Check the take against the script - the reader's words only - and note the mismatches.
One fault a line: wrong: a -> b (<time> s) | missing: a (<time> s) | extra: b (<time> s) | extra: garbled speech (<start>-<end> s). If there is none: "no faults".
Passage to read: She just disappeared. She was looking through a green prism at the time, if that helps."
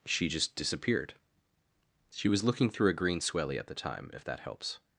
wrong: prism -> swelly (3.2 s)